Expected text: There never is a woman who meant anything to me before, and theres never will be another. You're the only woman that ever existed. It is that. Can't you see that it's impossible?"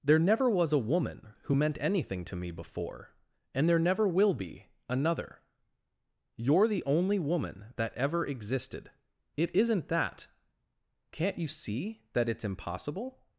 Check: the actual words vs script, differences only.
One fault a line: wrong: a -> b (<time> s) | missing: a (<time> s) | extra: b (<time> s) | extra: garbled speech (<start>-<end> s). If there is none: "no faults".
wrong: is -> was (0.5 s)
wrong: theres -> there (3.7 s)
wrong: is -> isn't (9.5 s)